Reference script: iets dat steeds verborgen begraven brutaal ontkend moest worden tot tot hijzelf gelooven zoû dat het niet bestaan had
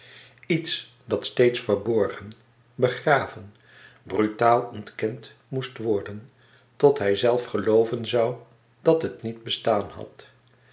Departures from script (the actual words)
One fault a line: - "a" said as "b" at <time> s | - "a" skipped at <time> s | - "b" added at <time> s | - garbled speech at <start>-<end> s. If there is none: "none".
- "tot" skipped at 7.0 s